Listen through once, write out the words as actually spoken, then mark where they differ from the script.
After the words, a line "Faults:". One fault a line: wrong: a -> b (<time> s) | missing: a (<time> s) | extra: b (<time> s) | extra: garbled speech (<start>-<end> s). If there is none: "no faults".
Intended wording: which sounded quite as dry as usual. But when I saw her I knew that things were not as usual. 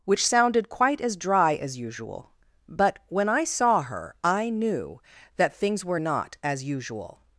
which sounded quite as dry as usual. But when I saw her I knew that things were not as usual.
Faults:
no faults